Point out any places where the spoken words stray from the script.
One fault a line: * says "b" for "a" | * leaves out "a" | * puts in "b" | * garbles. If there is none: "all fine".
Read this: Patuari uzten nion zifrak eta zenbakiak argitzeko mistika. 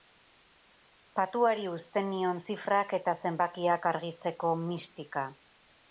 all fine